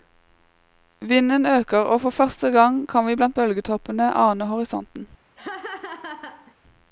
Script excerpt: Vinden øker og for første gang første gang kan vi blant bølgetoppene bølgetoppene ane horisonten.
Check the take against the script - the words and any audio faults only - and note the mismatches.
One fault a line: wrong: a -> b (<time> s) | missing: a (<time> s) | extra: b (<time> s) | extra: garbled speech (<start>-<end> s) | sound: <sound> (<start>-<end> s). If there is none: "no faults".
missing: første gang (2.9 s)
missing: bølgetoppene (4.1 s)
sound: laugh (5.4-6.5 s)